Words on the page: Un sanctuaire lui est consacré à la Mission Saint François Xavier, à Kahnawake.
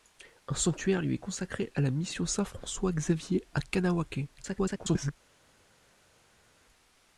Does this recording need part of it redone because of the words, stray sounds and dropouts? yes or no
yes